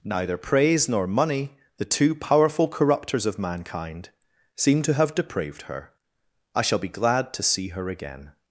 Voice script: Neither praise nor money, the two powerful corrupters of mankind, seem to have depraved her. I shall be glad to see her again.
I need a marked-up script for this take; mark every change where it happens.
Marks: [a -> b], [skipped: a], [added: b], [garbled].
Neither praise nor money, the two powerful corrupters of mankind, seem to have depraved her. I shall be glad to see her again.